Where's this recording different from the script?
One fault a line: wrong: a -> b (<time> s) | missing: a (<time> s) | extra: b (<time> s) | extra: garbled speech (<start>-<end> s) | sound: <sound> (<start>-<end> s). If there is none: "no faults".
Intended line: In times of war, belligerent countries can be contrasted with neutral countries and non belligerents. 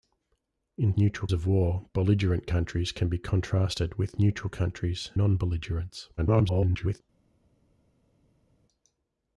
wrong: times -> neutral (1.0 s)
missing: and (5.1 s)
extra: garbled speech (6.2-7.0 s)